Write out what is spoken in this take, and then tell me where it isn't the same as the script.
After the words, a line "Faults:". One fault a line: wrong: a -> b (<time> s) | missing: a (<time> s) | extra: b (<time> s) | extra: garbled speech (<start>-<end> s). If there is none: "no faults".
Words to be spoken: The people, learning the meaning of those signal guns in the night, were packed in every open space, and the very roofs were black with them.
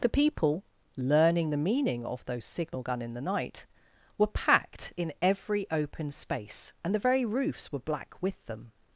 The people, learning the meaning of those signal gun in the night, were packed in every open space, and the very roofs were black with them.
Faults:
wrong: guns -> gun (2.8 s)